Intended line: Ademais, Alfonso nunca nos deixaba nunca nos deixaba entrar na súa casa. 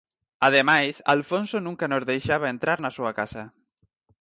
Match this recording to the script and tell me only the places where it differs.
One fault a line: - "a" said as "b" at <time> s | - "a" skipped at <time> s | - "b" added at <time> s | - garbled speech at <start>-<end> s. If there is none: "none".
- "nunca nos deixaba" skipped at 2.5 s